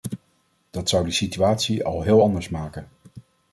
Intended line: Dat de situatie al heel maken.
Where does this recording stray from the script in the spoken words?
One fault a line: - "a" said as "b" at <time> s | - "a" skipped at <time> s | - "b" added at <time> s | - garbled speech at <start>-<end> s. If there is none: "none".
- "zou" added at 0.9 s
- "anders" added at 2.2 s